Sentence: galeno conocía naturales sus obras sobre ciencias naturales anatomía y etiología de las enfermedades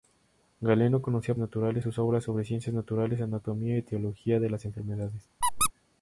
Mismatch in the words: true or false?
false